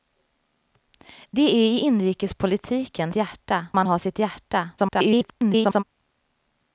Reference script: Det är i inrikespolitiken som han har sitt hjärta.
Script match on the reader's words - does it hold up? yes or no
no